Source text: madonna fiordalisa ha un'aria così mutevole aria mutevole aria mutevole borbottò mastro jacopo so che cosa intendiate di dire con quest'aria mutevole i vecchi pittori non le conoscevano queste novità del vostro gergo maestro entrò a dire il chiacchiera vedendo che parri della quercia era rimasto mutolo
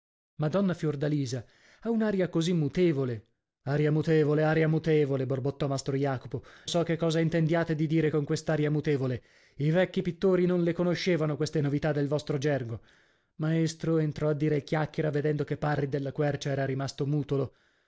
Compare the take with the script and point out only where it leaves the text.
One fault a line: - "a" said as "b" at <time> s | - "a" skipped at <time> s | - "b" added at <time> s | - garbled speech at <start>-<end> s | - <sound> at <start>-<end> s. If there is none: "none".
none